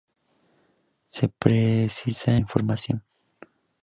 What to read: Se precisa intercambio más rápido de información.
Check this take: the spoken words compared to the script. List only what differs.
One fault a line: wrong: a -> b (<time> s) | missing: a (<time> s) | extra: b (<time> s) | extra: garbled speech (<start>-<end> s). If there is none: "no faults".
missing: intercambio más rápido (2.4 s)